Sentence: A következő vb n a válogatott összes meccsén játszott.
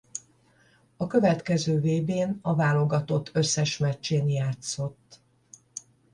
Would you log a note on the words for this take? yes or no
no